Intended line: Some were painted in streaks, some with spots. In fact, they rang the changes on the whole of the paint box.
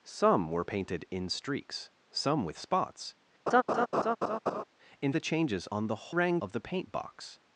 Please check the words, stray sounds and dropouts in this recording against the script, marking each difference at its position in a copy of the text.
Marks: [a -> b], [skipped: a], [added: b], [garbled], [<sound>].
Some were painted in streaks, some with spots. [laugh] In [skipped: fact, they rang] the changes on the [whole -> rang] of the paint box.